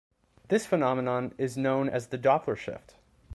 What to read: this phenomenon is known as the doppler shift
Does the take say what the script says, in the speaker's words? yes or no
yes